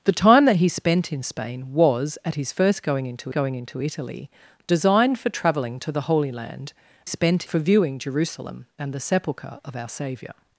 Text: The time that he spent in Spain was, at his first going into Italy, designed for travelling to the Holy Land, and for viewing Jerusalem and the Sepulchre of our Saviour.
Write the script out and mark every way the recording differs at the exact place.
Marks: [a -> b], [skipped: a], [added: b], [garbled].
The time that he spent in Spain was, at his first going into [added: going into] Italy, designed for travelling to the Holy Land, [and -> spent] for viewing Jerusalem and the Sepulchre of our Saviour.